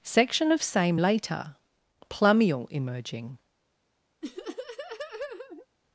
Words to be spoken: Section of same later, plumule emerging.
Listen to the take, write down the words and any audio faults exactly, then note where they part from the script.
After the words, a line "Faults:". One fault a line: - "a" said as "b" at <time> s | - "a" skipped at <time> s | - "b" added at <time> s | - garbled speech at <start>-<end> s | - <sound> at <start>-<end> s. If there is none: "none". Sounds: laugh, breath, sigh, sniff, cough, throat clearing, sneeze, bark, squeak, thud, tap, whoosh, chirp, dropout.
Section of same later, plumule emerging.
Faults:
- laugh at 4.2-5.7 s